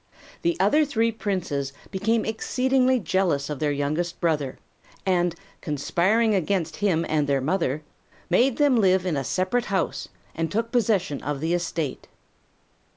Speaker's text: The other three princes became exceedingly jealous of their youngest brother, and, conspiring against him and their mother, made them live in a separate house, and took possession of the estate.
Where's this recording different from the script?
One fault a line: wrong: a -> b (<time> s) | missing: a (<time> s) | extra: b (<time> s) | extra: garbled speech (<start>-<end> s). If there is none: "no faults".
no faults